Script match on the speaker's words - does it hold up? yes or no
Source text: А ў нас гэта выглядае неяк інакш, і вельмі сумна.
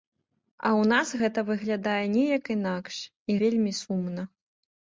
yes